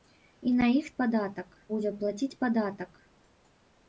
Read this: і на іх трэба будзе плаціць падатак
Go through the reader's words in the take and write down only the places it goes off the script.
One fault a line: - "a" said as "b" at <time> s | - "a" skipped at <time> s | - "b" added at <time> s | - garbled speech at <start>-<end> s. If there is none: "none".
- "трэба" said as "падатак" at 1.0 s